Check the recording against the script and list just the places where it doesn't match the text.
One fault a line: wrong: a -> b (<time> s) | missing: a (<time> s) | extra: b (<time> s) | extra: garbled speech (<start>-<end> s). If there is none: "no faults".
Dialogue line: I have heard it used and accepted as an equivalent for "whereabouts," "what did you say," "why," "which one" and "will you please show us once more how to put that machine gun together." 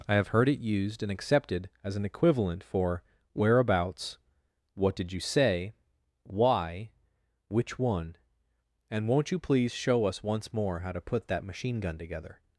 wrong: will -> won't (9.1 s)